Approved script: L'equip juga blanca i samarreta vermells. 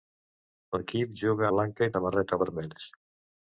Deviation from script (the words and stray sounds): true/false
false